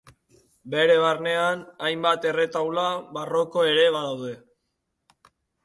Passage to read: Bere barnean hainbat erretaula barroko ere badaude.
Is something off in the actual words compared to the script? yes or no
no